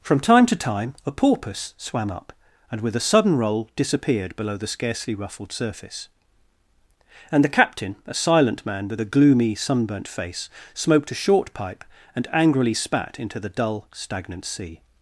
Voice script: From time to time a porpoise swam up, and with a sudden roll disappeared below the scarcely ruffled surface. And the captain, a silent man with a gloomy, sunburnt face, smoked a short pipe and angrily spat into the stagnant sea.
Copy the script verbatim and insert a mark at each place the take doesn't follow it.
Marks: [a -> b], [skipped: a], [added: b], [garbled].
From time to time a porpoise swam up, and with a sudden roll disappeared below the scarcely ruffled surface. And the captain, a silent man with a gloomy, sunburnt face, smoked a short pipe and angrily spat into the [added: dull] stagnant sea.